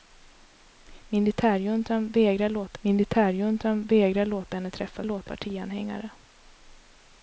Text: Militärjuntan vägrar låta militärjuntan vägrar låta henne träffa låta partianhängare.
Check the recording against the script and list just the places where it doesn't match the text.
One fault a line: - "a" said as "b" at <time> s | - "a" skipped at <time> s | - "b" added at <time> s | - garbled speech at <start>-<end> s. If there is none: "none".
none